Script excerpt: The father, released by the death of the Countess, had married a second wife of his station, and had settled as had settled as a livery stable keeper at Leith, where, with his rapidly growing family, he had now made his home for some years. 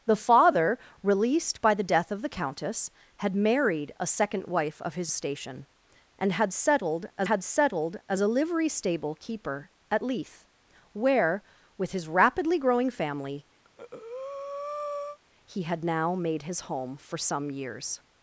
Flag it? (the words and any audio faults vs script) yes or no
yes